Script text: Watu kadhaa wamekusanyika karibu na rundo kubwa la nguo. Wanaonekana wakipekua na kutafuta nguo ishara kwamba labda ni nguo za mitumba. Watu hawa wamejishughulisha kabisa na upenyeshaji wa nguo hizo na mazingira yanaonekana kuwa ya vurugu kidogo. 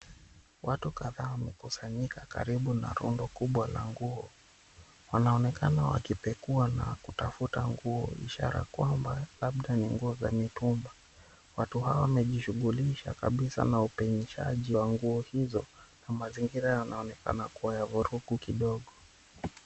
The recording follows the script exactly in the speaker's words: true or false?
true